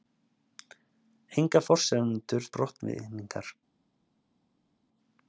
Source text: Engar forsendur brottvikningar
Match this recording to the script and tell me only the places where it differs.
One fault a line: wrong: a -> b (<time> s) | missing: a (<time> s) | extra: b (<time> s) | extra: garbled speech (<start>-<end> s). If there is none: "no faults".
no faults